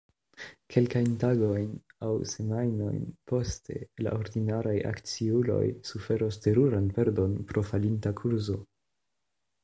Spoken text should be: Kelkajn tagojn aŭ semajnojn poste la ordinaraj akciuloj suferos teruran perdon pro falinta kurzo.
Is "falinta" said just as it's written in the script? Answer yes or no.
yes